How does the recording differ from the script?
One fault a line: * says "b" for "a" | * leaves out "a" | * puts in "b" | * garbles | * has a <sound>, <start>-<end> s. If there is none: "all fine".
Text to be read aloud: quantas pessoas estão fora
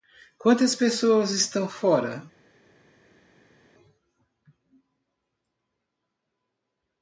all fine